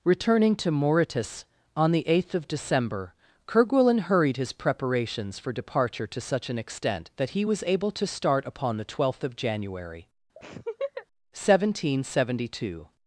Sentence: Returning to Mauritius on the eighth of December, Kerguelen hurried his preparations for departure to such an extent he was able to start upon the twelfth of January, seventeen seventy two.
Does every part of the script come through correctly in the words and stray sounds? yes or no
no